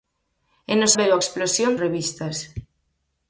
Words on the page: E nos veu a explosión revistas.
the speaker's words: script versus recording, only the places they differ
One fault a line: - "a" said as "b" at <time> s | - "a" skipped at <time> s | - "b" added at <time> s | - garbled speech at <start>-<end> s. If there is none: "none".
none